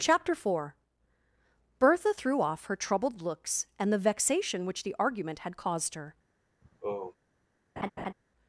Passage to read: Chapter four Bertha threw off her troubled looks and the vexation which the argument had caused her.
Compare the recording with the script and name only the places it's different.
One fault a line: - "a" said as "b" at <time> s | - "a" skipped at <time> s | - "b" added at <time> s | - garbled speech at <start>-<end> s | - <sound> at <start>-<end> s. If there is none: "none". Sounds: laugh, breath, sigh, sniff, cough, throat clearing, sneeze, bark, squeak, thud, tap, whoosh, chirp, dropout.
- sigh at 6.6-7.2 s
- laugh at 7.8-8.1 s